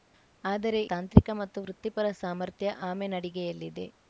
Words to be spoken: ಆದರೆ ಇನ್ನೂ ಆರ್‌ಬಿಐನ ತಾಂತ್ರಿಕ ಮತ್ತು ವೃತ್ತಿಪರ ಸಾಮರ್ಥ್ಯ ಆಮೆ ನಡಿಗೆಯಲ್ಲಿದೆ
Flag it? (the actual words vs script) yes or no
yes